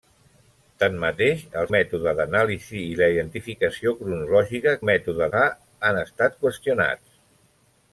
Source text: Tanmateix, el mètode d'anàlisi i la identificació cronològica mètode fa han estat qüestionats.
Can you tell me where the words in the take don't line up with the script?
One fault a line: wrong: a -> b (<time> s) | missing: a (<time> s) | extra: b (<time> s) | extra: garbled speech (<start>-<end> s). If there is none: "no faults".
no faults